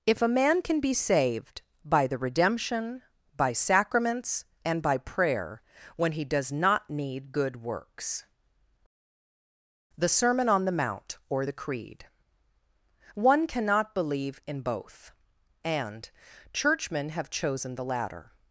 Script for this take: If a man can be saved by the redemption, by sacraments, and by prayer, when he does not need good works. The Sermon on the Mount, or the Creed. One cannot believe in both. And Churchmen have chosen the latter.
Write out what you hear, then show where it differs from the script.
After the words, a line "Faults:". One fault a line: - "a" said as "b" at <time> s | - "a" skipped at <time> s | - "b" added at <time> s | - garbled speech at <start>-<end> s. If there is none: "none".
If a man can be saved by the redemption, by sacraments, and by prayer, when he does not need good works. The Sermon on the Mount, or the Creed. One cannot believe in both. And Churchmen have chosen the latter.
Faults:
none